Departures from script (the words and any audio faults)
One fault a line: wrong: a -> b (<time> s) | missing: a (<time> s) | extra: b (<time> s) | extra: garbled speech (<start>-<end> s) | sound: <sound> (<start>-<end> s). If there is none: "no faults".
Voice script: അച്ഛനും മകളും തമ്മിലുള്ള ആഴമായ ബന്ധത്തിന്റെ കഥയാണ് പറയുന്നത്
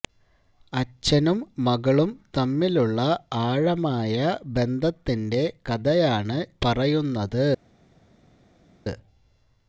no faults